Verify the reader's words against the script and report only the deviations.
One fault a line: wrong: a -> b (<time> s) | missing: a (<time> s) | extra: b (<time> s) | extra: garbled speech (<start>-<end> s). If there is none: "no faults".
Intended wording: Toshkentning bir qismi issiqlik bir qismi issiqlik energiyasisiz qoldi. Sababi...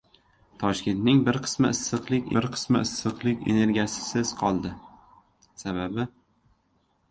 no faults